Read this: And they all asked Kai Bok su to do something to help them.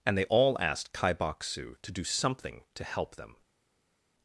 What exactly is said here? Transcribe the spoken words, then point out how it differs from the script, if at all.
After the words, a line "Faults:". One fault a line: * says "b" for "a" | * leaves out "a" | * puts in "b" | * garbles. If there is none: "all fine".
And they all asked Kai Bok su to do something to help them.
Faults:
all fine